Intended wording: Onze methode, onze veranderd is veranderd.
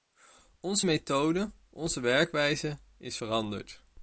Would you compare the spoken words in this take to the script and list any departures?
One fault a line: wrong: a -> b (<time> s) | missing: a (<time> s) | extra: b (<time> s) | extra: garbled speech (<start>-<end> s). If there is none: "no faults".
wrong: veranderd -> werkwijze (2.0 s)